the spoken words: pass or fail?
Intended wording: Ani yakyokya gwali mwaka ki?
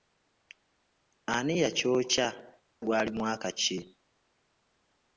pass